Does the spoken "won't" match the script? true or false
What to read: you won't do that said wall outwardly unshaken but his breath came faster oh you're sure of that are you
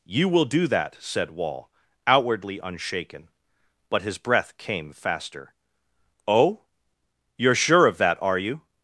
false